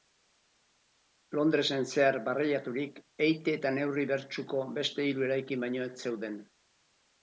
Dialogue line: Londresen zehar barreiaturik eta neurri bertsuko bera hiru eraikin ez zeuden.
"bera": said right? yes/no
no